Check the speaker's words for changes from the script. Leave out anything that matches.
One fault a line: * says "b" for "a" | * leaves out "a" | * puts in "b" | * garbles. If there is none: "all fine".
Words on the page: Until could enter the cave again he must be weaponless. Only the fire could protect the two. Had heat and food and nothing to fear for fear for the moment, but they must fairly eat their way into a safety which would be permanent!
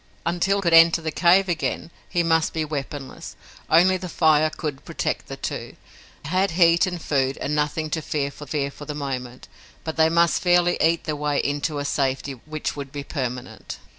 all fine